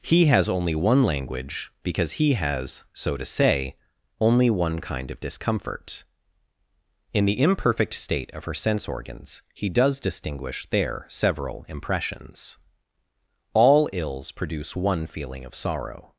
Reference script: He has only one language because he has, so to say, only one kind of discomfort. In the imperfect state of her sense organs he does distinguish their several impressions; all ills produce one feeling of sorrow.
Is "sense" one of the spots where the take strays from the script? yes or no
no